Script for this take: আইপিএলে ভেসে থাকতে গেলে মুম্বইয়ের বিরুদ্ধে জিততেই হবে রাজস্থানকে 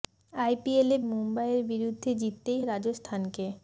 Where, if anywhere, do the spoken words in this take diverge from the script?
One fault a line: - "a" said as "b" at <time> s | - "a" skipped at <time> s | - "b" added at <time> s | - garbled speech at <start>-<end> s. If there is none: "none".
- "ভেসে থাকতে গেলে" skipped at 1.0 s
- "হবে" skipped at 2.6 s